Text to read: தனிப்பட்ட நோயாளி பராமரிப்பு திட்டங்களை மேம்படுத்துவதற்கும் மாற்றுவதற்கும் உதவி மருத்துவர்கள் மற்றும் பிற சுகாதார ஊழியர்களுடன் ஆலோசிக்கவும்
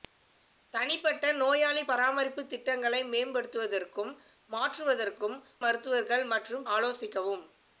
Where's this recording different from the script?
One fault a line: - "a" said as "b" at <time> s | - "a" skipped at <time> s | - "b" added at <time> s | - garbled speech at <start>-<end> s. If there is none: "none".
- "உதவி" skipped at 5.4 s
- "பிற சுகாதார ஊழியர்களுடன்" skipped at 6.7 s